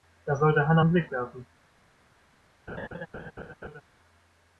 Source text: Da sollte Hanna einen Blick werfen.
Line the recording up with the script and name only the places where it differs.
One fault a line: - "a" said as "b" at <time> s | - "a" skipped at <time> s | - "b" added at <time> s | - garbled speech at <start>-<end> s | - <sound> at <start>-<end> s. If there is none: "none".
- laugh at 2.7-3.8 s